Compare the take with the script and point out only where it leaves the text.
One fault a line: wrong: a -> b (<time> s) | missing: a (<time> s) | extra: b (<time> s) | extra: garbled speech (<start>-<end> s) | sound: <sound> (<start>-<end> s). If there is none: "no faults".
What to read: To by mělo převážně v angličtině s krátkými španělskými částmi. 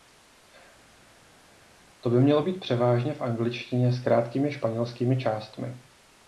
extra: být (2.4 s)